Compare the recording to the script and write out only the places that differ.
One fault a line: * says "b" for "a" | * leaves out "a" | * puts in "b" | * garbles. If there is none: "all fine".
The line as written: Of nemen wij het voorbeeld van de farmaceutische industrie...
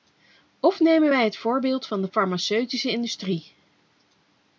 all fine